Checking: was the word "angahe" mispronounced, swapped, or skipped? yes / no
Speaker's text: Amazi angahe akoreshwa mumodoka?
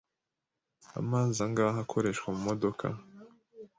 no